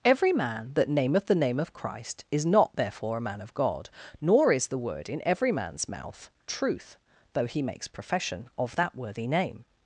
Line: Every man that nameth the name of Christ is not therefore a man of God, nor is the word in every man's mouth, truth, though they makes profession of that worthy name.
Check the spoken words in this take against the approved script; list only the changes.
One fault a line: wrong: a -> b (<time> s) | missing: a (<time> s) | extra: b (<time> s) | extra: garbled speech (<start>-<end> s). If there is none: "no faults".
wrong: they -> he (7.5 s)